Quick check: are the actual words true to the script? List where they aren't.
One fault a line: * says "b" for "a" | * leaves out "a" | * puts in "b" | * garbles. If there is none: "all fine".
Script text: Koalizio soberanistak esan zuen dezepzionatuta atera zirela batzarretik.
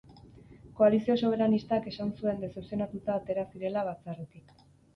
all fine